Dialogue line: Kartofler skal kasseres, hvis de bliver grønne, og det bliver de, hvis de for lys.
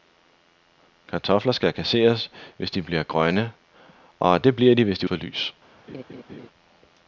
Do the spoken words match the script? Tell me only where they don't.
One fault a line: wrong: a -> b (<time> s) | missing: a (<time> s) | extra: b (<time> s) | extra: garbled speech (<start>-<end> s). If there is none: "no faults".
no faults